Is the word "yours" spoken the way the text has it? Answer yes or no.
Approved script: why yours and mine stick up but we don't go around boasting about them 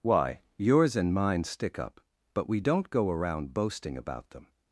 yes